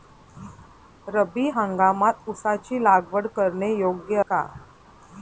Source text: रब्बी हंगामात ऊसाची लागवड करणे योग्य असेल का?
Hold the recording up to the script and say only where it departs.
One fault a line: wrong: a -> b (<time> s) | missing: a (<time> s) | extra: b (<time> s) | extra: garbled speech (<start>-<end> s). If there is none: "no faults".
missing: असेल (4.2 s)